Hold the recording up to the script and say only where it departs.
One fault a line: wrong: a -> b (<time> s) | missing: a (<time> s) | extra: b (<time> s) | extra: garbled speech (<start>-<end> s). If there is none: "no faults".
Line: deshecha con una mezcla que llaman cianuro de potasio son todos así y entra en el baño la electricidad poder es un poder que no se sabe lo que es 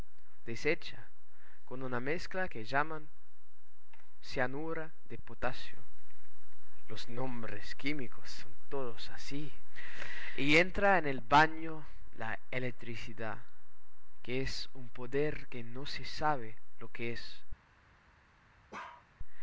extra: los nombres químicos (6.9 s)
wrong: poder -> que (14.2 s)